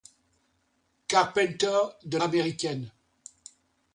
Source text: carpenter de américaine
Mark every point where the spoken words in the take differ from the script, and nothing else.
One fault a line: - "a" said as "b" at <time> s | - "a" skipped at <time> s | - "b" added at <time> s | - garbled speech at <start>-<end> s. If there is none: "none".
none